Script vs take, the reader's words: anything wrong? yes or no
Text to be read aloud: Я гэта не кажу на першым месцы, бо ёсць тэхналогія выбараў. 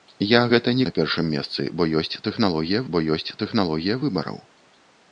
yes